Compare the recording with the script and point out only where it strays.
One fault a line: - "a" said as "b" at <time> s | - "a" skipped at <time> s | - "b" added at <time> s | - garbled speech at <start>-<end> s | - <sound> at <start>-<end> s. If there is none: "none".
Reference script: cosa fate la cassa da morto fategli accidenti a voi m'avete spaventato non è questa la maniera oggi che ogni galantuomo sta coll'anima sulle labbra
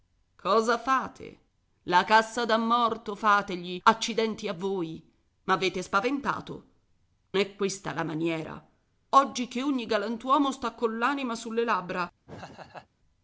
- "non" skipped at 6.7 s
- laugh at 12.2-12.9 s